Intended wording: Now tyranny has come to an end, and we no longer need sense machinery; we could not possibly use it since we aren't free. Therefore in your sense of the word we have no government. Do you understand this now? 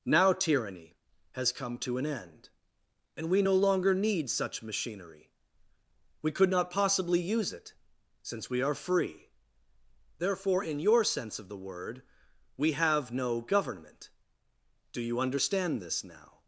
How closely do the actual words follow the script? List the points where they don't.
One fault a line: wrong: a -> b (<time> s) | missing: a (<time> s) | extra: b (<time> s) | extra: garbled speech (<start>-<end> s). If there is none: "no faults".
wrong: sense -> such (4.3 s)
wrong: aren't -> are (8.6 s)